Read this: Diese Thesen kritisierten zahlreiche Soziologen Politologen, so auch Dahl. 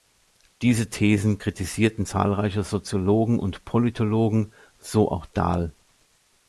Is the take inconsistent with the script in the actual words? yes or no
yes